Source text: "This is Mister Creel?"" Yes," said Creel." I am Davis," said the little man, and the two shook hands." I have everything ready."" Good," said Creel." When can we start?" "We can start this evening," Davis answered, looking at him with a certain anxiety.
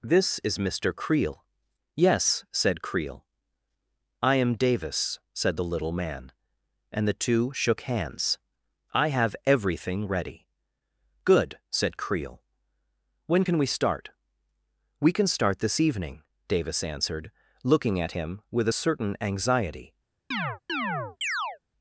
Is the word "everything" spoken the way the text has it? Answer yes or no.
yes